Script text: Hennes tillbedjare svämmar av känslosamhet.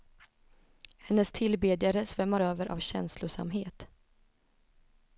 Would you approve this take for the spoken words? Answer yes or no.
no